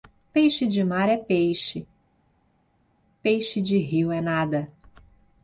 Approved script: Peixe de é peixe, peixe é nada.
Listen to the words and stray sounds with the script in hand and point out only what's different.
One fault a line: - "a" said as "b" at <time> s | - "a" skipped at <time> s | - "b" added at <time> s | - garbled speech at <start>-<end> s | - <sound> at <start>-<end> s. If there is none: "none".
- "mar" added at 0.8 s
- "de rio" added at 3.6 s